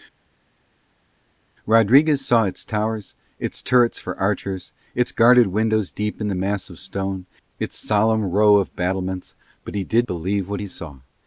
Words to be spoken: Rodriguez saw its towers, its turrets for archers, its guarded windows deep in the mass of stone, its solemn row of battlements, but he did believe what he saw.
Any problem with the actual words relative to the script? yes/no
no